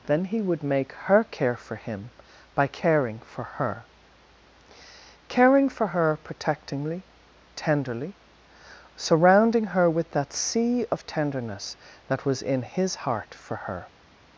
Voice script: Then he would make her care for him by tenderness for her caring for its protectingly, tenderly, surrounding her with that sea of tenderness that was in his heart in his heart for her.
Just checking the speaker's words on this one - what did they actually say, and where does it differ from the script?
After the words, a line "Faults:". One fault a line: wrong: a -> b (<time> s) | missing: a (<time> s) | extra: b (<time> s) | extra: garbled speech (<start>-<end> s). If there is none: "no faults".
Then he would make her care for him by caring for her caring for her protectingly, tenderly, surrounding her with that sea of tenderness that was in his heart for her.
Faults:
wrong: tenderness -> caring (2.7 s)
wrong: its -> her (5.9 s)
missing: in his heart (13.3 s)